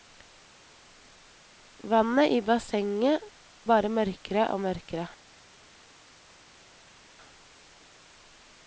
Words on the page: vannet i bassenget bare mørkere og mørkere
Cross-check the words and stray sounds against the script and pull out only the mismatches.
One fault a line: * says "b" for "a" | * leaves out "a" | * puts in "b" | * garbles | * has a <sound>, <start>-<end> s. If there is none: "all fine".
all fine